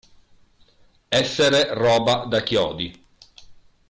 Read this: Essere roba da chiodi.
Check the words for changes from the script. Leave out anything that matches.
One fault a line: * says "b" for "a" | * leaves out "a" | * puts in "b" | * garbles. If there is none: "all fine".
all fine